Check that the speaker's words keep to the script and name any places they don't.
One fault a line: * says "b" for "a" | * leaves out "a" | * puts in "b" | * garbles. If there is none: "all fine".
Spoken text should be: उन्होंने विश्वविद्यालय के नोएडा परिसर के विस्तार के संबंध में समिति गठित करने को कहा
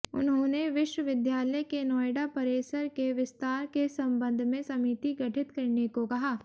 all fine